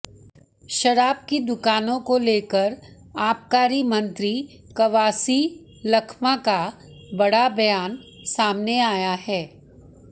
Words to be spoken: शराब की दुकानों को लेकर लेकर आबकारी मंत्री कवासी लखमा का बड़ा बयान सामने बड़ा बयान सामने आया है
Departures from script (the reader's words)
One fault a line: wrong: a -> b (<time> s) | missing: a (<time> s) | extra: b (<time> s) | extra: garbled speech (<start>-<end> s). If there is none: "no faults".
missing: लेकर (2.8 s)
missing: बड़ा बयान सामने (8.8 s)